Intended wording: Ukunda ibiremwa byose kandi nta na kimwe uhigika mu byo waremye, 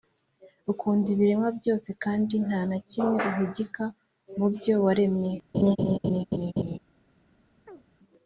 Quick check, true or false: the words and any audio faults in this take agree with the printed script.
false